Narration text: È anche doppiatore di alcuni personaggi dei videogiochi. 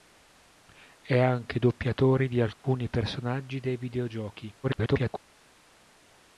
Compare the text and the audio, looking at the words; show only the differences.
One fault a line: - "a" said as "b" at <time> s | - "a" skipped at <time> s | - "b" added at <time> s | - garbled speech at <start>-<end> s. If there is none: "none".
- garbled speech at 4.6-5.2 s